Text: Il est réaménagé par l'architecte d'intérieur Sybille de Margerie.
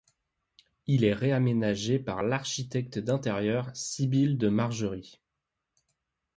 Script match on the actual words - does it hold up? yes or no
yes